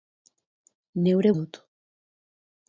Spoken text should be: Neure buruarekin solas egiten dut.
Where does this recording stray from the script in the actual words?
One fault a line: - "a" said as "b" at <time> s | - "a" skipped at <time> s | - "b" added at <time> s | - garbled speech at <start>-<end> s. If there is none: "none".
- "buruarekin solas egiten" skipped at 1.3 s